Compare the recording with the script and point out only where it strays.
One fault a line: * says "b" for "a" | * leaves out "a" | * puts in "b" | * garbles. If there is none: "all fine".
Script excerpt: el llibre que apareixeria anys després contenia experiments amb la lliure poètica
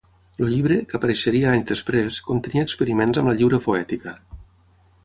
all fine